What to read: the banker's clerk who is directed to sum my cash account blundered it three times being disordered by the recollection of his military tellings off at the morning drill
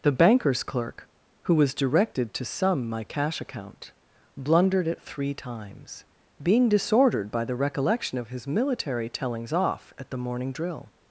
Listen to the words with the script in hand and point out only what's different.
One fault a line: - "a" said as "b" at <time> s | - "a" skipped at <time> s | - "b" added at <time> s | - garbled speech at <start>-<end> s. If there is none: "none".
- "is" said as "was" at 1.5 s